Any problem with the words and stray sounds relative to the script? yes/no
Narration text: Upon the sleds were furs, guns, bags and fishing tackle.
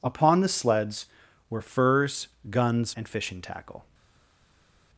yes